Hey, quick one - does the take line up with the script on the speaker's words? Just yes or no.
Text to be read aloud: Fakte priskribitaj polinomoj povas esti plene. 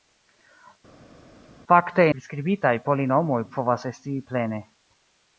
yes